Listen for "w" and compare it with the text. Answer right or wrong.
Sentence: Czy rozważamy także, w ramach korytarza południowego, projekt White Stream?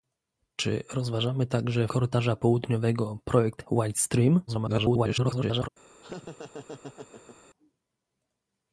wrong